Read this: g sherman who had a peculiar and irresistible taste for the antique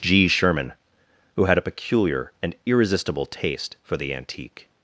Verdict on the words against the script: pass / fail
pass